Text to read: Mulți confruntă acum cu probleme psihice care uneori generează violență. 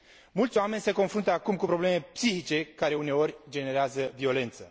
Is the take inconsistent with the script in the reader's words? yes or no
yes